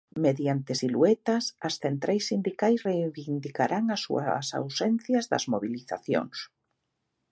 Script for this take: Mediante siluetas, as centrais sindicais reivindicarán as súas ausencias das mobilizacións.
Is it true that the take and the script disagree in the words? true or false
false